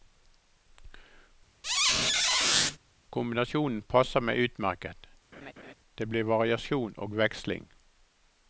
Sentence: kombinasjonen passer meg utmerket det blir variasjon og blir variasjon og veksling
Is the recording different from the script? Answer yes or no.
yes